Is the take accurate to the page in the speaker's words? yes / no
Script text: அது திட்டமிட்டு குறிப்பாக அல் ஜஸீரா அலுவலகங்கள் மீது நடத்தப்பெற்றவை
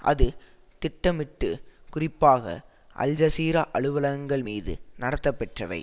yes